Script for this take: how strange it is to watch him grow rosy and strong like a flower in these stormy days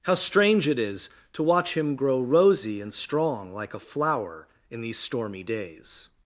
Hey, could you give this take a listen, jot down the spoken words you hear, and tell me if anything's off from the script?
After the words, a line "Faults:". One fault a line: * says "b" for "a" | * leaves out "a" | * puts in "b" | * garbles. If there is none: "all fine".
how strange it is to watch him grow rosy and strong like a flower in these stormy days
Faults:
all fine